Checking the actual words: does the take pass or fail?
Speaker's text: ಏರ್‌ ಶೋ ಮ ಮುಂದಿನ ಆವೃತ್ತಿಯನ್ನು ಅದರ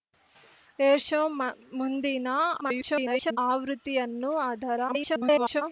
fail